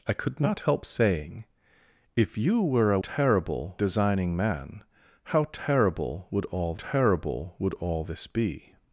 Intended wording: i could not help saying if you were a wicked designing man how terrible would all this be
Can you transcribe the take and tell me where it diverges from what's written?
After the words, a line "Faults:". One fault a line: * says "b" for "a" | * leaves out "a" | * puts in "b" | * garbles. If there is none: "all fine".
i could not help saying if you were a terrible designing man how terrible would all terrible would all this be
Faults:
* says "terrible" for "wicked"
* puts in "terrible would all"